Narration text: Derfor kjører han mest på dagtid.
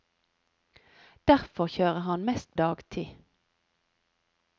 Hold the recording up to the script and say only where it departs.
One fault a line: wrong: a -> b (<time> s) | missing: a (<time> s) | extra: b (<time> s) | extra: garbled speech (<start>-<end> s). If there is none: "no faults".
missing: på (2.6 s)